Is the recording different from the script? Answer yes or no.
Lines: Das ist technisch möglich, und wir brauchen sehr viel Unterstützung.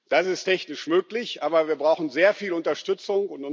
yes